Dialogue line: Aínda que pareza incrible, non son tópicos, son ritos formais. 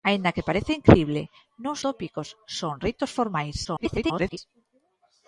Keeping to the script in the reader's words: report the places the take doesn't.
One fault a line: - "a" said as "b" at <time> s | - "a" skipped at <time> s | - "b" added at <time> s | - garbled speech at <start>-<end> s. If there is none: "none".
- "son" skipped at 1.8 s
- garbled speech at 3.6-4.4 s